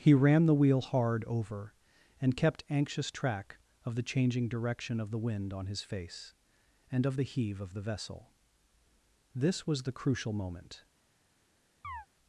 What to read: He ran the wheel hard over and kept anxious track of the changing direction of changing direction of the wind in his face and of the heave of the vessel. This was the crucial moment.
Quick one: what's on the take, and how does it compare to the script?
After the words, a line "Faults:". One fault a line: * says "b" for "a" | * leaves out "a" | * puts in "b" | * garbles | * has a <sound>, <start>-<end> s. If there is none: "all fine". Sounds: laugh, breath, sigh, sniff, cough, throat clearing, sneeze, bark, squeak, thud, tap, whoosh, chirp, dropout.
He ran the wheel hard over and kept anxious track of the changing direction of the wind on his face and of the heave of the vessel. This was the crucial moment.
Faults:
* leaves out "changing direction of"
* says "on" for "in"
* has a chirp, 11.8-12.1 s